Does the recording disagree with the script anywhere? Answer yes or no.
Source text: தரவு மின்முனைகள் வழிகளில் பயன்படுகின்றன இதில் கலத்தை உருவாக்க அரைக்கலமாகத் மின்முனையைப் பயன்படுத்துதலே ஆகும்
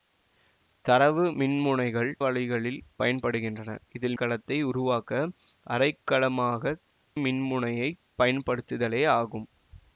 no